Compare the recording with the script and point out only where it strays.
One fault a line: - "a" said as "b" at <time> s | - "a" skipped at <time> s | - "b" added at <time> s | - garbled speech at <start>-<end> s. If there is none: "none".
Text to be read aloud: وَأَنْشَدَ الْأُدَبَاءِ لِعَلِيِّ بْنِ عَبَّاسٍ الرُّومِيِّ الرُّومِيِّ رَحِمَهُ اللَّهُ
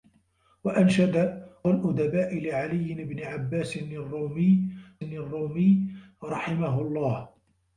none